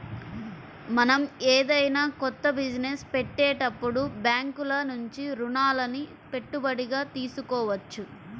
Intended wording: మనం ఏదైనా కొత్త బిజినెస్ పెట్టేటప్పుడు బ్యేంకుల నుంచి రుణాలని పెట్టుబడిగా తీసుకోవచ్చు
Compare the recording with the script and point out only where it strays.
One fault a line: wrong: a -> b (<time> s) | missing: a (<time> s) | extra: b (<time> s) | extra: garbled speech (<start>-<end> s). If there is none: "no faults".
no faults